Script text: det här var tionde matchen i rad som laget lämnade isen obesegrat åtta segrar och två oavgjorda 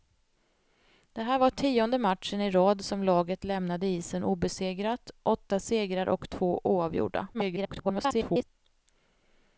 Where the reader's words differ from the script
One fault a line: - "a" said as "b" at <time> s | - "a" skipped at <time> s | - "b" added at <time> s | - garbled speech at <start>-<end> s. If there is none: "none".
- garbled speech at 7.3-8.4 s